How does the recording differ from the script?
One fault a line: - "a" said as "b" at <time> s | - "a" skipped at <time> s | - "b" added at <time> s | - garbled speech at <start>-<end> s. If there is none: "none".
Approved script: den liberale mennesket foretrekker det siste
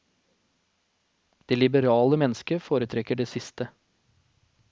- "den" said as "det" at 1.4 s